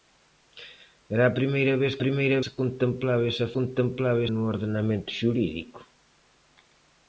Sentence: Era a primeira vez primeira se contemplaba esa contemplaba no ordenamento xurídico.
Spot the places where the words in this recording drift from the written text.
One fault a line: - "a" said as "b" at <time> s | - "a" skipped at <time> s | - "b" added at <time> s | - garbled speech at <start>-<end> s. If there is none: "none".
none